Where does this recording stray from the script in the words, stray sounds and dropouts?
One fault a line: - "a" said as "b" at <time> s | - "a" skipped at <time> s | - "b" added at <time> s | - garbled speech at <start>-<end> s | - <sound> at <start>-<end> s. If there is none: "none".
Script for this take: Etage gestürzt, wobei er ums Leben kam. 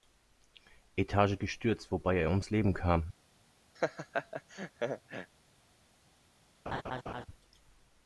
- laugh at 3.8-5.3 s
- laugh at 6.7-7.3 s